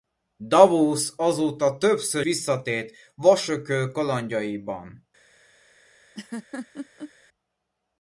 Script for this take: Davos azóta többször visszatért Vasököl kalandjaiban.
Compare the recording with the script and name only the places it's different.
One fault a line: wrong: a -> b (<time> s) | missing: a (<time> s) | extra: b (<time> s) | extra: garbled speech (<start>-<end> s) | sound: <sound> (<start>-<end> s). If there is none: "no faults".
sound: laugh (6.1-7.1 s)